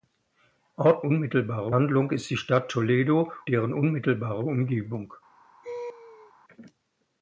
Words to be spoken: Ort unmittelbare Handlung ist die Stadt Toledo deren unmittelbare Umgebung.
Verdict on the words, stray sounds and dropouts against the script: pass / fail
fail